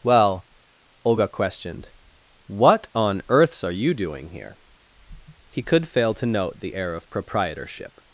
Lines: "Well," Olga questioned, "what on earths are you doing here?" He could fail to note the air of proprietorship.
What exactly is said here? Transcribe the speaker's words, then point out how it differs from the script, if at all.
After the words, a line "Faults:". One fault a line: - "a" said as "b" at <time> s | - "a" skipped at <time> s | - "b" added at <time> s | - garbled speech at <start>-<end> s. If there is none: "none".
"Well," Olga questioned, "what on earths are you doing here?" He could fail to note the air of proprietorship.
Faults:
none